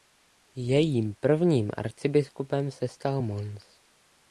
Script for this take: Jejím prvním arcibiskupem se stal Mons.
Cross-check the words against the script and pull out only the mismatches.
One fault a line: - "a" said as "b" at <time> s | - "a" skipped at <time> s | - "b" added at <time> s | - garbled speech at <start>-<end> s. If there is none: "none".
none